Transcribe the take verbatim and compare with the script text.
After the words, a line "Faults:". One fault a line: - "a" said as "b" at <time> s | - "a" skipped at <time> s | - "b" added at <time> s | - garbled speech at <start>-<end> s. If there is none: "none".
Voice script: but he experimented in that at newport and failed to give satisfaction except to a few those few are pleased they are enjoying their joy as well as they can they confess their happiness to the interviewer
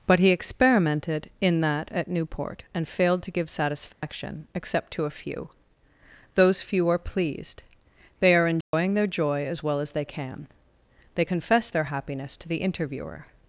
but he experimented in that at newport and failed to give satisfaction except to a few those few are pleased they are enjoying their joy as well as they can they confess their happiness to the interviewer
Faults:
none